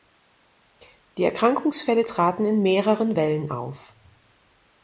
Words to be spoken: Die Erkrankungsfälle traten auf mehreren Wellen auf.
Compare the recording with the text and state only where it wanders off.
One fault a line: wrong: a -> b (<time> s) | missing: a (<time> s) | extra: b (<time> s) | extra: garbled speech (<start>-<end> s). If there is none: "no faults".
wrong: auf -> in (2.4 s)